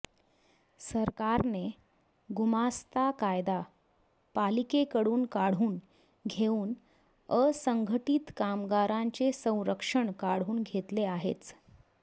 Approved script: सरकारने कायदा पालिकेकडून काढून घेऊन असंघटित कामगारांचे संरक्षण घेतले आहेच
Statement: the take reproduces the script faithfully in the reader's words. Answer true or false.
false